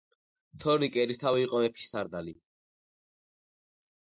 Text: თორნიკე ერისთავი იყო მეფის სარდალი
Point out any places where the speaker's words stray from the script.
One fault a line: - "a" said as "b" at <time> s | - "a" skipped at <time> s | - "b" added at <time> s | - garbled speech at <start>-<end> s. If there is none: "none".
none